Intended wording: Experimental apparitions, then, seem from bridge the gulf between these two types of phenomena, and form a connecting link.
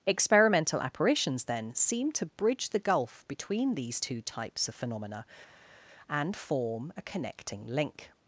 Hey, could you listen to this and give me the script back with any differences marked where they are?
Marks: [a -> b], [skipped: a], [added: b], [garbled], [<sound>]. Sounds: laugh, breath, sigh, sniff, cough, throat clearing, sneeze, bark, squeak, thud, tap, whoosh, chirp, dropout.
Experimental apparitions, then, seem [from -> to] bridge the gulf between these two types of phenomena, and form a connecting link.